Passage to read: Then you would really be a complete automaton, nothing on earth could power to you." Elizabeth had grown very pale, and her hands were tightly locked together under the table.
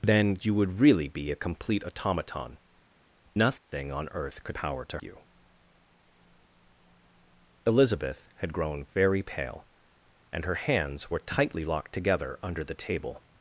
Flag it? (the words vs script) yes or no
no